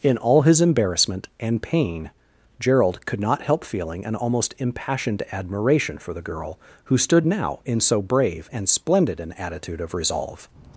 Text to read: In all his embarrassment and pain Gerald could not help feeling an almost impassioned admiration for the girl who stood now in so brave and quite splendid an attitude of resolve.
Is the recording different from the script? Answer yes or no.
yes